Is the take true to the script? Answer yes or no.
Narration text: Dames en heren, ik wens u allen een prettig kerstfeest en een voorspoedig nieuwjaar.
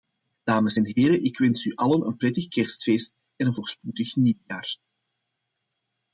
yes